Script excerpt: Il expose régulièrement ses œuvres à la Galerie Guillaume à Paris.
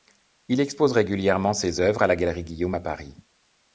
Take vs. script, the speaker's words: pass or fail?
pass